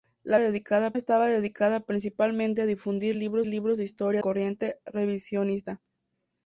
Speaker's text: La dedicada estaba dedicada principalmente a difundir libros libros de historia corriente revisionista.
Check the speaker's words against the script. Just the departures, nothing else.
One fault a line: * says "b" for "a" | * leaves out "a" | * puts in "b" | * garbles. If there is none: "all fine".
all fine